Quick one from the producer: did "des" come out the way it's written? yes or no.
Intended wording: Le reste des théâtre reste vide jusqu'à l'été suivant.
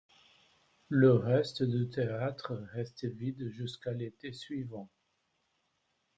no